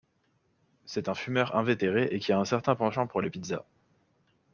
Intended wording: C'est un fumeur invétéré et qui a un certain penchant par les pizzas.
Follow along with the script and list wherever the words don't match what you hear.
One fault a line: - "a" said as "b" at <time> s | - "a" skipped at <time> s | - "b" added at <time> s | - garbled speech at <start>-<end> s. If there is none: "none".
- "par" said as "pour" at 3.0 s